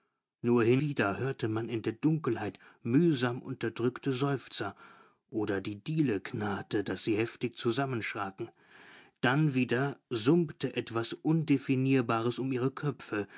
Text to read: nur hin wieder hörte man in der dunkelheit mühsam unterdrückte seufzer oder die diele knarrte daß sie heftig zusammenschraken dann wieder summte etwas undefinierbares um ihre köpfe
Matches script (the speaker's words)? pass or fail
pass